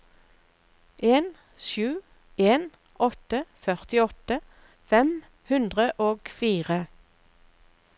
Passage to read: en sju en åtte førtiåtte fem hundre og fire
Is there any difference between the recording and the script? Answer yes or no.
no